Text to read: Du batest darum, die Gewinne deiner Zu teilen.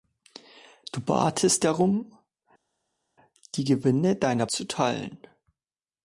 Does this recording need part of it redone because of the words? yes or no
no